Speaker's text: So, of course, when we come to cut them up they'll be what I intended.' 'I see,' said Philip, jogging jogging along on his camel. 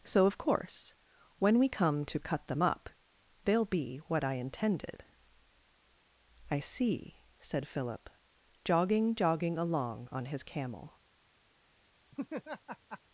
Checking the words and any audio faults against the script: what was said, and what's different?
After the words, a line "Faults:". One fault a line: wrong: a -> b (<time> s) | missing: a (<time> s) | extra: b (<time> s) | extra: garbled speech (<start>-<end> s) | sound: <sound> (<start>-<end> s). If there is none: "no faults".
So, of course, when we come to cut them up they'll be what I intended.' 'I see,' said Philip, jogging jogging along on his camel.
Faults:
sound: laugh (12.1-13.0 s)